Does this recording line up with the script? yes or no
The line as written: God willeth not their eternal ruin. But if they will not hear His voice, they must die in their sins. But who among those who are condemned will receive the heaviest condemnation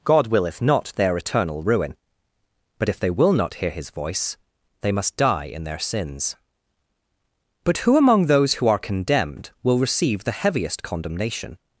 yes